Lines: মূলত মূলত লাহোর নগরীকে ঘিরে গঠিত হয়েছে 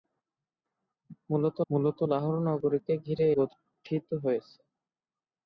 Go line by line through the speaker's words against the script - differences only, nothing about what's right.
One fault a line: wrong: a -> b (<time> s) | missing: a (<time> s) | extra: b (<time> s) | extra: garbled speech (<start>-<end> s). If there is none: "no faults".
no faults